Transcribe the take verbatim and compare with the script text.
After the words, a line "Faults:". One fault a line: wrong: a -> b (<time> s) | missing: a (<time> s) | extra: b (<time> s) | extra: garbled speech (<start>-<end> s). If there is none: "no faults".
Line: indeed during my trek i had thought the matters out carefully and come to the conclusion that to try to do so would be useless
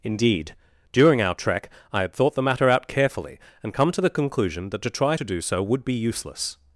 indeed during our trek i had thought the matter out carefully and come to the conclusion that to try to do so would be useless
Faults:
wrong: my -> our (1.2 s)
wrong: matters -> matter (2.4 s)